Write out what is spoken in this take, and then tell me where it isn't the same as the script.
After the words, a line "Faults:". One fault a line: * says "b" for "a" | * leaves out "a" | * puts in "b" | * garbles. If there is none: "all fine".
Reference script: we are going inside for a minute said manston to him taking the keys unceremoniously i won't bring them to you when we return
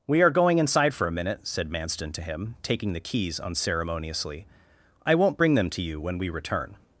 we are going inside for a minute said manston to him taking the keys unceremoniously i won't bring them to you when we return
Faults:
all fine